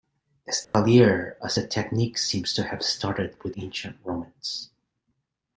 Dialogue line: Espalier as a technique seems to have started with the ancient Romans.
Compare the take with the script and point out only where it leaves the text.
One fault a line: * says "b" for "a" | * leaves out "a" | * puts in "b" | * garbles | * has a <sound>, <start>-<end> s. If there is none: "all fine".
* has a dropout, 0.6-0.7 s
* leaves out "the"